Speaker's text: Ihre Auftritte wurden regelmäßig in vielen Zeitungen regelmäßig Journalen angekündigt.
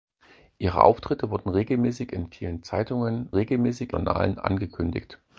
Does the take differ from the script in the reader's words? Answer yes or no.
no